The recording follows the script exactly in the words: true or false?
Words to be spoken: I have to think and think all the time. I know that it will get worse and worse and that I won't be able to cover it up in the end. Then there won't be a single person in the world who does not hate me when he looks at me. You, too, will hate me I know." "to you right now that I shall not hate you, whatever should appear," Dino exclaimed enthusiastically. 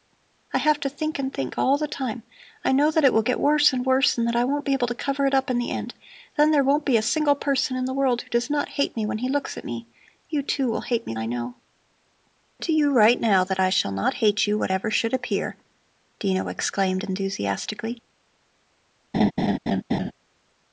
true